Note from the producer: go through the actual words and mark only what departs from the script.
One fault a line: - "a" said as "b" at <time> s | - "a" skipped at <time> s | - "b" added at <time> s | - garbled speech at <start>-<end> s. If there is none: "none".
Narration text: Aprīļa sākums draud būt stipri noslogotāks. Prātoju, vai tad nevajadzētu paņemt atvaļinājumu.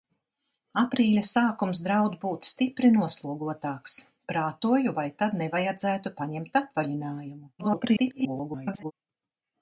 - garbled speech at 7.6-8.9 s